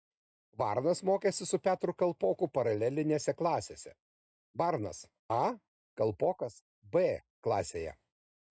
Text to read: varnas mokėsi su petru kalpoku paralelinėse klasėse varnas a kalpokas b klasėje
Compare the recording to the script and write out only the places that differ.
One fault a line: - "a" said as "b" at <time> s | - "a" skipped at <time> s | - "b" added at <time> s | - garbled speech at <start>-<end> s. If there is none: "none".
none